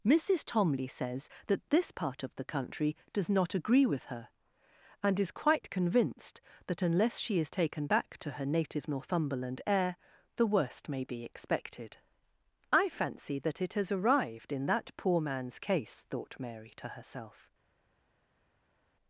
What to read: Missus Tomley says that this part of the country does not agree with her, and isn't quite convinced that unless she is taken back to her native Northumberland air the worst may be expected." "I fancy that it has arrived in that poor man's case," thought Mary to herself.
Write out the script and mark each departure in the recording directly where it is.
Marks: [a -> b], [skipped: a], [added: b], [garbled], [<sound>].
Missus Tomley says that this part of the country does not agree with her, and [isn't -> is] quite convinced that unless she is taken back to her native Northumberland air the worst may be expected." "I fancy that it has arrived in that poor man's case," thought Mary to herself.